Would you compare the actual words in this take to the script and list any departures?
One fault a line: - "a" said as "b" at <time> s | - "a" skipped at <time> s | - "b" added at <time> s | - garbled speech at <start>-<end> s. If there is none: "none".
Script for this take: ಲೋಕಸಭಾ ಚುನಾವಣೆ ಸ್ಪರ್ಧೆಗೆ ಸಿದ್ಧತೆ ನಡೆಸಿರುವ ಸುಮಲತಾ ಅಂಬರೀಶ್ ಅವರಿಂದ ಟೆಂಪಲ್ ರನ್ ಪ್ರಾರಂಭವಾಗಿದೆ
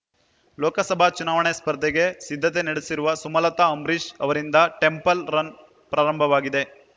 none